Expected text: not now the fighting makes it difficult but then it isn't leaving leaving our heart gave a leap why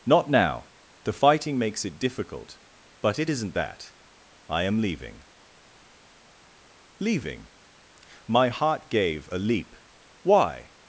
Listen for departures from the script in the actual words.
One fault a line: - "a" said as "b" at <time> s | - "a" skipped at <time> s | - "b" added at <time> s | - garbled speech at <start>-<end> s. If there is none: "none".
- "then" skipped at 3.2 s
- "that i am" added at 3.5 s
- "our" said as "my" at 8.3 s